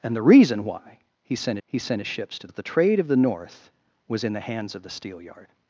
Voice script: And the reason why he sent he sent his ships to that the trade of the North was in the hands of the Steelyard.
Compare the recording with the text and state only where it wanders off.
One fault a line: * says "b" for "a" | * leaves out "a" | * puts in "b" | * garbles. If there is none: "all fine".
all fine